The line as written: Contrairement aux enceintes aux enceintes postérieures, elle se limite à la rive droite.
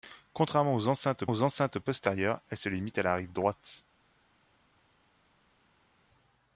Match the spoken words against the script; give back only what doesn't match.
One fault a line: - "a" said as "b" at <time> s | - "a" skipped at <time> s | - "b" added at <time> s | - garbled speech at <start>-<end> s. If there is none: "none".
none